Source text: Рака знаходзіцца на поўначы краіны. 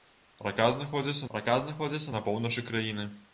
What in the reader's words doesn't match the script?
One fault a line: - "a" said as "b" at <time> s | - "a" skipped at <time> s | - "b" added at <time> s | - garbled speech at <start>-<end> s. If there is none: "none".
- "рака знаходзіцца" added at 1.3 s